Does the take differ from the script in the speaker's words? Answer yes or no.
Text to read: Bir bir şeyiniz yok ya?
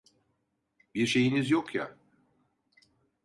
yes